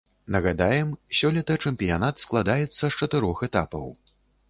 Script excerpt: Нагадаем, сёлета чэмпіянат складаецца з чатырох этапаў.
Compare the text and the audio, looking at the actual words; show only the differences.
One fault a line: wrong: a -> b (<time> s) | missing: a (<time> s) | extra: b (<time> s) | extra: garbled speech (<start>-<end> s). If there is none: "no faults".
no faults